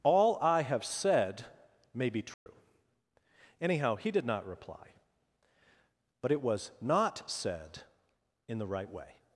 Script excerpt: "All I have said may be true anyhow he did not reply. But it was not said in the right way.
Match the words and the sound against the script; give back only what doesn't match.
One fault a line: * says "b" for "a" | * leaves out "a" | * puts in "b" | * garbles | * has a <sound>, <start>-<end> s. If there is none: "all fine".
* has a dropout, 2.3-2.5 s